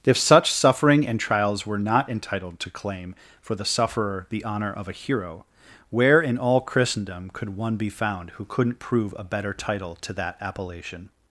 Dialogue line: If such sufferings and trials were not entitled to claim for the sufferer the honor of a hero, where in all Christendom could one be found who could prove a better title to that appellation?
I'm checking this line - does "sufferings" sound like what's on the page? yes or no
no